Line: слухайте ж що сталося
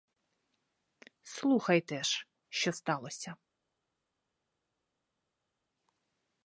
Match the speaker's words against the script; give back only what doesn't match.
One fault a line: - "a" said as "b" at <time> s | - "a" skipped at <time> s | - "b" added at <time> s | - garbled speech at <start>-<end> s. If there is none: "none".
none